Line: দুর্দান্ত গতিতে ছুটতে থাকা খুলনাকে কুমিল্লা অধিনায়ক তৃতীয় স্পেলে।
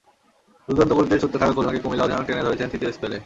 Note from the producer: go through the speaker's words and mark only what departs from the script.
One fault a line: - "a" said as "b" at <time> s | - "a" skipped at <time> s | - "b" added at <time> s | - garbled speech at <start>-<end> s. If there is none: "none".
- "টেনে ধরেছেন" added at 2.3 s